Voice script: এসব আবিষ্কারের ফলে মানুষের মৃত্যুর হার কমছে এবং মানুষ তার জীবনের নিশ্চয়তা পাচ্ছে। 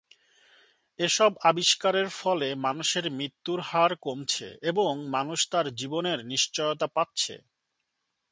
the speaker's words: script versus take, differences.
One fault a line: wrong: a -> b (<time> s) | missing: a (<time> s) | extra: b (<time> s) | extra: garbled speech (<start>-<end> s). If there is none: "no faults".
no faults